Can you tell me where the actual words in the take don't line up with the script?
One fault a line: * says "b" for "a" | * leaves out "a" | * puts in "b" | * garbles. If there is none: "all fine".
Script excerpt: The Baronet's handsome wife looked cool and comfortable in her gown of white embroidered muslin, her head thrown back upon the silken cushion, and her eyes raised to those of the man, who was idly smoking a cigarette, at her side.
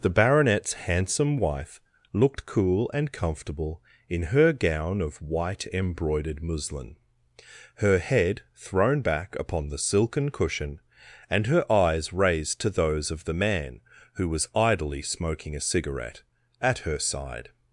all fine